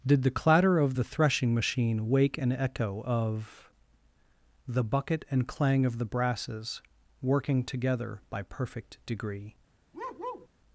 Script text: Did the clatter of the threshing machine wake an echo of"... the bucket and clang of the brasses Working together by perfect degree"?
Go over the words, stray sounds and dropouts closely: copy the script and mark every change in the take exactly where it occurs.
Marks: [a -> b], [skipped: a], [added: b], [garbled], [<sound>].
Did the clatter of the threshing machine wake an echo of"... the bucket and clang of the brasses Working together by perfect degree"? [bark]